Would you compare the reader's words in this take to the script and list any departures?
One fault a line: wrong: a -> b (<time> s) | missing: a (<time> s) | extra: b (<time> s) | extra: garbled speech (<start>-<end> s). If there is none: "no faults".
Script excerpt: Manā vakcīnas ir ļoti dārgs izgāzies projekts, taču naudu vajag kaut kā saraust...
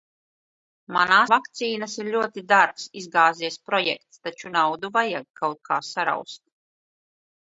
no faults